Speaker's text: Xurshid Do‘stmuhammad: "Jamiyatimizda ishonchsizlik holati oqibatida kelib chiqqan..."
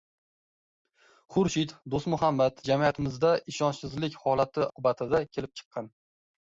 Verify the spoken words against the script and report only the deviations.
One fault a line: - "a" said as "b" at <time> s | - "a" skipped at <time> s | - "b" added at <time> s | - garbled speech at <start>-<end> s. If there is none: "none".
none